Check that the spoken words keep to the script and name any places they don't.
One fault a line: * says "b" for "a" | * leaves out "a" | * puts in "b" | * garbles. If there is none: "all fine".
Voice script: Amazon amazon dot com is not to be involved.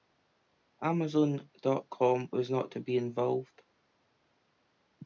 * leaves out "amazon"
* says "was" for "is"